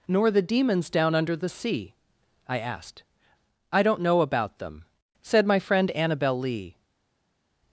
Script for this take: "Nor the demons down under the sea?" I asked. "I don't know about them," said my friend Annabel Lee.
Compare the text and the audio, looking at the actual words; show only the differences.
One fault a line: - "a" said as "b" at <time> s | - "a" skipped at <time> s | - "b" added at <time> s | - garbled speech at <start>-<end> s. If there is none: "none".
none